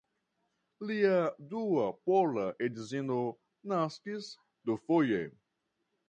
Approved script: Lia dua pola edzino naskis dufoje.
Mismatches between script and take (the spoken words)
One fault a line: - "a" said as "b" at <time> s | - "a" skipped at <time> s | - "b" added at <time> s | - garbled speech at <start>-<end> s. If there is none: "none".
none